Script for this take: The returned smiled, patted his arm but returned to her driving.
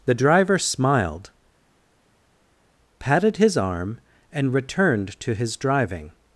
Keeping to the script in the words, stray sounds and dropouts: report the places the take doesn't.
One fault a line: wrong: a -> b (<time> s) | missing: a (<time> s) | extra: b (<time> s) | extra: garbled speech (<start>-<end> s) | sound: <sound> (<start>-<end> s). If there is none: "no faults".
wrong: returned -> driver (0.1 s)
wrong: but -> and (4.3 s)
wrong: her -> his (5.3 s)